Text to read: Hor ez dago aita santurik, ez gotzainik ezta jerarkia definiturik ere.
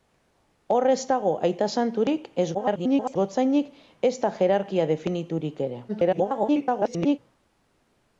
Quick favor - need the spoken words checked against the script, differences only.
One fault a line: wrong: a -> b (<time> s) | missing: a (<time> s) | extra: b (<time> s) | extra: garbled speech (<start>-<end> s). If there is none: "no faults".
extra: garbled speech (2.5-3.2 s)
extra: garbled speech (5.9-7.2 s)